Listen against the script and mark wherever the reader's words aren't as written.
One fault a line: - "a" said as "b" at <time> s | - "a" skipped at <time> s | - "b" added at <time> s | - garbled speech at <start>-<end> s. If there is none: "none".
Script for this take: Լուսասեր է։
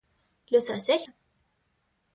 none